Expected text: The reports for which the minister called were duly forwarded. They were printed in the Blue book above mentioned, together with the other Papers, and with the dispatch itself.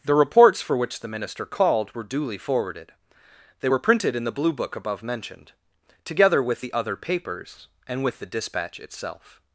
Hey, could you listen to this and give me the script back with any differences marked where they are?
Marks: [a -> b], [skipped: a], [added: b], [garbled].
The reports for which the minister called were duly forwarded. They were printed in the Blue book above mentioned, together with the other Papers, and with the dispatch itself.